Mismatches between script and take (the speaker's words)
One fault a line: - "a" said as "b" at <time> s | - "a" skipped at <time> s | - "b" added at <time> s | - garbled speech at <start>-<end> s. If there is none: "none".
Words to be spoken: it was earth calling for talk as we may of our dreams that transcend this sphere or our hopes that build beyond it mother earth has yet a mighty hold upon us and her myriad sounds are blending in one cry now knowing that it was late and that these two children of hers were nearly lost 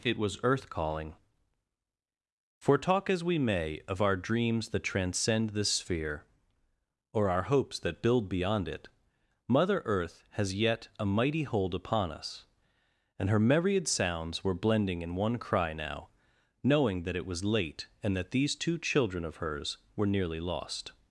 - "are" said as "were" at 14.4 s